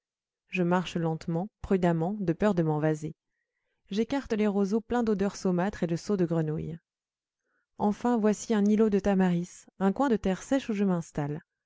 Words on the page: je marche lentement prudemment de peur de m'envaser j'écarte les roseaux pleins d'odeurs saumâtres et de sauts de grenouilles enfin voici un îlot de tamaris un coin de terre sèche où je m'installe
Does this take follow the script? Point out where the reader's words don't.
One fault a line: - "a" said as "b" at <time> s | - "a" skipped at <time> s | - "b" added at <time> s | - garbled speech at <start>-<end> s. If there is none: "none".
none